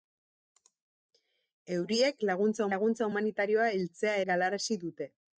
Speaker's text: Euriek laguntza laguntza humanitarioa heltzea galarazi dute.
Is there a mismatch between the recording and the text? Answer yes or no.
no